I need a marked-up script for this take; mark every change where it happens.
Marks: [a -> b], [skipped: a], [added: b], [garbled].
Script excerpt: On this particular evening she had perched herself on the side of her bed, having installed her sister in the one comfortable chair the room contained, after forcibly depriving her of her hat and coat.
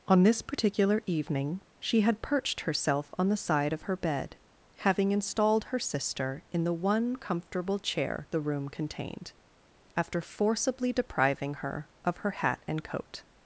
On this particular evening she had perched herself on the side of her bed, having installed her sister in the one comfortable chair the room contained, after forcibly depriving her of her hat and coat.